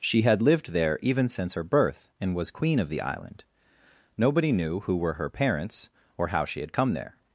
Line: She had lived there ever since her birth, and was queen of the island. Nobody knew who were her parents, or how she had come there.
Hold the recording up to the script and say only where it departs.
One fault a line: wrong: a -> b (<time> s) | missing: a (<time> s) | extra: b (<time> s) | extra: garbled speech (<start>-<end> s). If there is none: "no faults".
wrong: ever -> even (1.0 s)